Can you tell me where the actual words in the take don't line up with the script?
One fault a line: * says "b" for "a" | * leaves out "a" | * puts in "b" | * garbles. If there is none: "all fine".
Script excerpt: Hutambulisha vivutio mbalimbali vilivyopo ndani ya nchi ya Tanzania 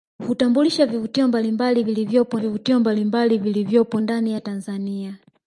* puts in "vivutio mbalimbali vilivyopo"
* leaves out "nchi"